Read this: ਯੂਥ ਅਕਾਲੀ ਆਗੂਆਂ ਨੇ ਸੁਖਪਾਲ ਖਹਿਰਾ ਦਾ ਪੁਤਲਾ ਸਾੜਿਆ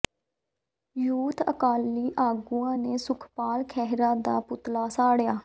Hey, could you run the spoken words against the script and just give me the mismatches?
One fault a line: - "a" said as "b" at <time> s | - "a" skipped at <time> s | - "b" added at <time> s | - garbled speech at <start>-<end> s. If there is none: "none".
none